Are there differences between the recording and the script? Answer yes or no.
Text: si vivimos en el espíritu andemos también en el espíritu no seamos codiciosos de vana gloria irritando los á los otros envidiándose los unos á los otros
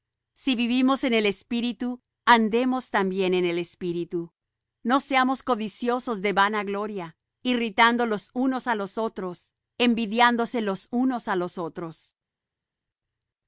yes